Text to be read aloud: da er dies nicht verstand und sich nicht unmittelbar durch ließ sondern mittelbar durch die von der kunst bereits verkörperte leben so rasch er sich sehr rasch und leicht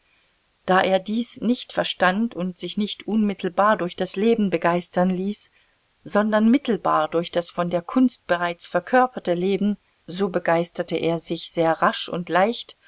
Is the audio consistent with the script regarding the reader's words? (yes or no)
no